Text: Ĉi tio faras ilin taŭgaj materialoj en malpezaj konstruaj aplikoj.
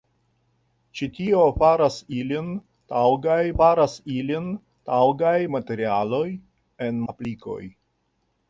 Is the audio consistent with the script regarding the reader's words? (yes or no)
no